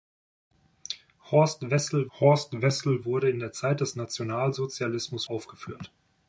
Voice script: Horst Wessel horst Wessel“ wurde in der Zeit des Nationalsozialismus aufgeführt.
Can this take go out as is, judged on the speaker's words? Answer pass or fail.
pass